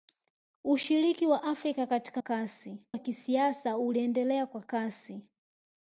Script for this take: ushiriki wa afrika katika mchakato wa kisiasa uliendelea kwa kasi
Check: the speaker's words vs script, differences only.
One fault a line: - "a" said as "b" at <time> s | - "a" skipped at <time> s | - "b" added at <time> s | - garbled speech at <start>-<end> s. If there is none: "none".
- "mchakato" said as "kasi" at 2.2 s